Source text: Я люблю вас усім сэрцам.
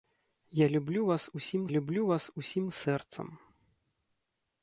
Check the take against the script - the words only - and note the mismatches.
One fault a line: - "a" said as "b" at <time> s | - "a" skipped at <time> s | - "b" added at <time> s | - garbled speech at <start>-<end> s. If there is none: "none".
- "люблю вас усім" added at 1.7 s